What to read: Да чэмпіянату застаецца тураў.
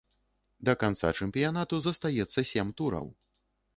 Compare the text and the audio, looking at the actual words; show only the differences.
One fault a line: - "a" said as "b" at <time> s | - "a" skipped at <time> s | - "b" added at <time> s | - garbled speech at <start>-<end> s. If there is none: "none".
- "канца" added at 0.8 s
- "сем" added at 2.5 s